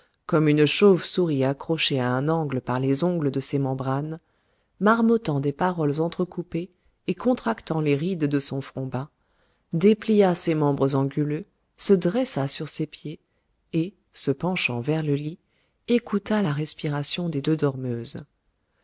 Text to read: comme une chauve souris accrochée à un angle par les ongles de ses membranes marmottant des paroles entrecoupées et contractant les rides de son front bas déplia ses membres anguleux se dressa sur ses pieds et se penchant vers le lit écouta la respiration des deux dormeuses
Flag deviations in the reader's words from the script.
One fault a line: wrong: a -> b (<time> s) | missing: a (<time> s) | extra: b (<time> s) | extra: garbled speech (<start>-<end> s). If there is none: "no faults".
no faults